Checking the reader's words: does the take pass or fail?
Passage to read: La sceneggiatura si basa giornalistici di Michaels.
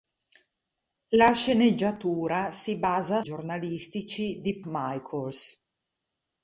pass